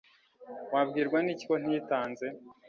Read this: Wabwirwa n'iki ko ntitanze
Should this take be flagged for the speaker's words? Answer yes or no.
no